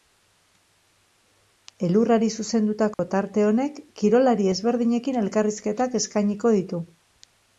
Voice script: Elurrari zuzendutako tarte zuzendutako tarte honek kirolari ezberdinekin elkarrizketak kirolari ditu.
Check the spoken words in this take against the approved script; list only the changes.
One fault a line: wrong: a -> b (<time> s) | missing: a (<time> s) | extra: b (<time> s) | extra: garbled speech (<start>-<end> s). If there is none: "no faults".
missing: zuzendutako tarte (3.5 s)
wrong: kirolari -> eskainiko (6.0 s)